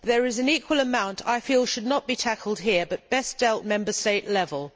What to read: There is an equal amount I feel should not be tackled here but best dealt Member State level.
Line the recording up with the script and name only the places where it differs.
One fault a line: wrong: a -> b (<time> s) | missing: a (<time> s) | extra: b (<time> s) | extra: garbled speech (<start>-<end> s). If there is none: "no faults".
no faults